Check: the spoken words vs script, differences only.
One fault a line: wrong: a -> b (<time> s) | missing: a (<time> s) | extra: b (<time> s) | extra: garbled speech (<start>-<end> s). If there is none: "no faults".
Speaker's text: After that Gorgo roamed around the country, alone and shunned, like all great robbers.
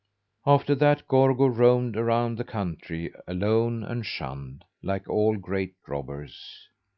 no faults